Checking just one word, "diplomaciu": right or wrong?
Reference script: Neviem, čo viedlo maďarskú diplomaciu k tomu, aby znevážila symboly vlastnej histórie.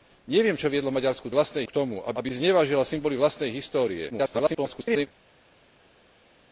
wrong